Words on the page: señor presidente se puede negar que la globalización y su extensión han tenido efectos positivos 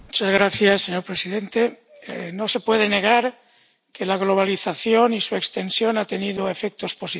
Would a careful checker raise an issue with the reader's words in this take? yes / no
yes